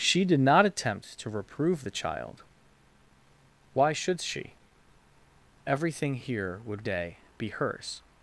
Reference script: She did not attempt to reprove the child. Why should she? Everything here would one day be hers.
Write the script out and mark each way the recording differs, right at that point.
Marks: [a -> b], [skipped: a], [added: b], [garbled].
She did not attempt to reprove the child. Why should she? Everything here would [skipped: one] day be hers.